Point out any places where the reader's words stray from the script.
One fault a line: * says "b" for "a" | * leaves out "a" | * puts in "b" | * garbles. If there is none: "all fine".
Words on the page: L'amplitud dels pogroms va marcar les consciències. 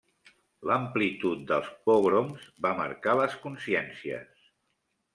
all fine